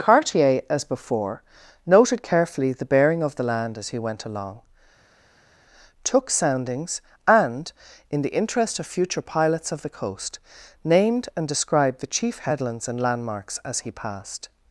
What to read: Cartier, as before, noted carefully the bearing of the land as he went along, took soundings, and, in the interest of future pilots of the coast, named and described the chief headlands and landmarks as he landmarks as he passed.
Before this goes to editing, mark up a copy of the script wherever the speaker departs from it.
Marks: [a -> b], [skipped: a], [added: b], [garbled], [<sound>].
Cartier, as before, noted carefully the bearing of the land as he went along, took soundings, and, in the interest of future pilots of the coast, named and described the chief headlands and landmarks as he [skipped: landmarks as he] passed.